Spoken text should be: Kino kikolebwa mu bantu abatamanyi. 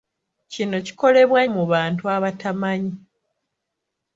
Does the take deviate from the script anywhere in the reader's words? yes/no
no